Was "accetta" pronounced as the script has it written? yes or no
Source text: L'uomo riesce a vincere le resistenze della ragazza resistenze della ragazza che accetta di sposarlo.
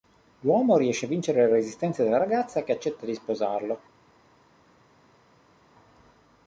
yes